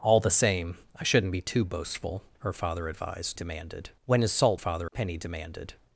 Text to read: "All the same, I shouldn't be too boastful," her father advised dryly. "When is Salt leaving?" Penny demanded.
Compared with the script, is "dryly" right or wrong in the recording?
wrong